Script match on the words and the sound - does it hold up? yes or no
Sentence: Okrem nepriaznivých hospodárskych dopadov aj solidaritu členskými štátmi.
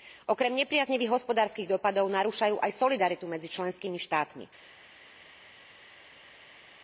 no